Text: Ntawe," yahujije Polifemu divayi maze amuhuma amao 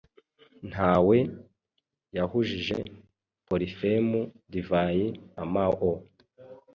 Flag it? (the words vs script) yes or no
yes